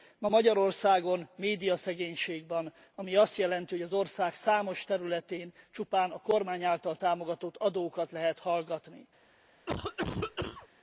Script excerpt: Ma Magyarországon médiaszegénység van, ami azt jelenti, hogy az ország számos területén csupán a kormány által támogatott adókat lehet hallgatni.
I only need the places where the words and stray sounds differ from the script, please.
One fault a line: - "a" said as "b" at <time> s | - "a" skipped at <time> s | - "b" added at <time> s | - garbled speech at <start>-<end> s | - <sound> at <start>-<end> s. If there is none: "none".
- cough at 9.7-10.7 s